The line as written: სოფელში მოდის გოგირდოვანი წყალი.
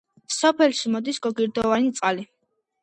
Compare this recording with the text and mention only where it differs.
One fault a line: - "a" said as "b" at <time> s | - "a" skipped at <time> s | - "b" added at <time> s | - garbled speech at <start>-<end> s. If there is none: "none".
none